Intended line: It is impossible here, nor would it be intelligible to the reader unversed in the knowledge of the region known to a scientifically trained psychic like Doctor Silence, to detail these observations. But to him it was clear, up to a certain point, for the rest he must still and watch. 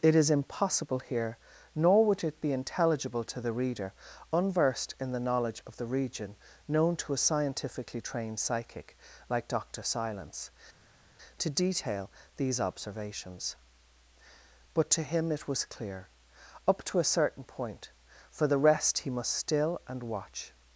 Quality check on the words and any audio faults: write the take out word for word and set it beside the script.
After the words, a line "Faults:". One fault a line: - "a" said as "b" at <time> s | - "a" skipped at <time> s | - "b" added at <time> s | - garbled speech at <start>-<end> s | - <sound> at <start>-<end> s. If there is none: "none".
It is impossible here, nor would it be intelligible to the reader unversed in the knowledge of the region known to a scientifically trained psychic like Doctor Silence, to detail these observations. But to him it was clear, up to a certain point, for the rest he must still and watch.
Faults:
none